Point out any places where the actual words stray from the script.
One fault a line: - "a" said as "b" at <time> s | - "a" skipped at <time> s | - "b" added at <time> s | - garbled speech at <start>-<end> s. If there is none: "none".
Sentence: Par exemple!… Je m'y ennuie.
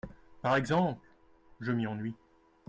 none